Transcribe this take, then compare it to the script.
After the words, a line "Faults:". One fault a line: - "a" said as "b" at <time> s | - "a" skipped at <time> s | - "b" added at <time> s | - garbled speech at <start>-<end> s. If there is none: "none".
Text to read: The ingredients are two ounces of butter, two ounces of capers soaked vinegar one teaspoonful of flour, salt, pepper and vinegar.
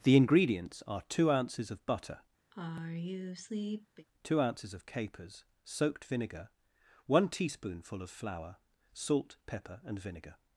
The ingredients are two ounces of butter, two ounces of capers soaked vinegar one teaspoonful of flour, salt, pepper and vinegar.
Faults:
none